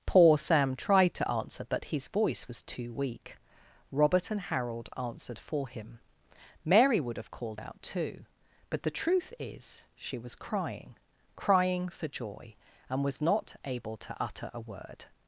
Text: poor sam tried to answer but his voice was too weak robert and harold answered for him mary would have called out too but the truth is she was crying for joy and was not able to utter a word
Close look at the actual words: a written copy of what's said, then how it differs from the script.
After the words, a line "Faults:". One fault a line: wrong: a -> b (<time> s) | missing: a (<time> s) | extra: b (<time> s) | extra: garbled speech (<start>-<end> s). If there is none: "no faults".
poor sam tried to answer but his voice was too weak robert and harold answered for him mary would have called out too but the truth is she was crying crying for joy and was not able to utter a word
Faults:
extra: crying (11.3 s)